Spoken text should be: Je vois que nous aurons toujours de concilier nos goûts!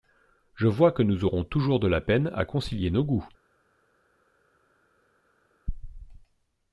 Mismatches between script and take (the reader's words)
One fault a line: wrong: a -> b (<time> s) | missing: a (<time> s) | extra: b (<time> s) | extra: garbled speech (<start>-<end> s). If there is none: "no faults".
extra: la peine à (1.9 s)